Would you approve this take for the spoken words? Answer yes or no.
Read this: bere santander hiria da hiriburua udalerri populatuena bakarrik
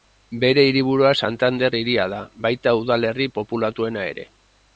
no